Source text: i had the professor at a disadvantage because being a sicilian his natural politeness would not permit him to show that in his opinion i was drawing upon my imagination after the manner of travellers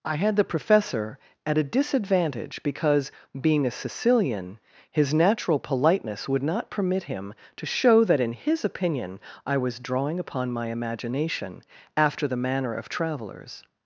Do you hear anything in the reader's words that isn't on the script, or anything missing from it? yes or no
no